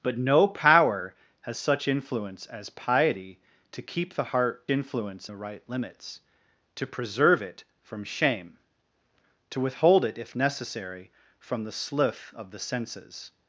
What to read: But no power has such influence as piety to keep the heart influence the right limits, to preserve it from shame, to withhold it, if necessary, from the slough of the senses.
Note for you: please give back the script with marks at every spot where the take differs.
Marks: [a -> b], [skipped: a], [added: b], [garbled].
But no power has such influence as piety to keep the heart influence the right limits, to preserve it from shame, to withhold it, if necessary, from the slough of the senses.